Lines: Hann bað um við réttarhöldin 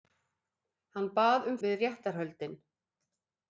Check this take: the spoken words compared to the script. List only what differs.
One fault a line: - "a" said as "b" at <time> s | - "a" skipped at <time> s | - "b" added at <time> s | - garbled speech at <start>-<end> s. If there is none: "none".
none